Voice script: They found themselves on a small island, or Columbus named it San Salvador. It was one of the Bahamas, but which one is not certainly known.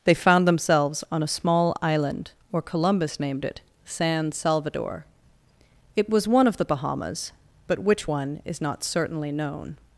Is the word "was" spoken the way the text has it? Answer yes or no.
yes